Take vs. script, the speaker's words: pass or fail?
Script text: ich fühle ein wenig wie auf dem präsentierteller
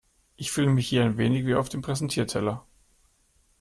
fail